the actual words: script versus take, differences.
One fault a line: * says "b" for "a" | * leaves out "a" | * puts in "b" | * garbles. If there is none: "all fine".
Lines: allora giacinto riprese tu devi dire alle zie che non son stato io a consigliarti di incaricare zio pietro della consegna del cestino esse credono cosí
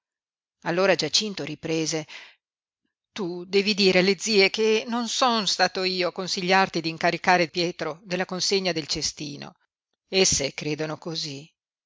* leaves out "zio"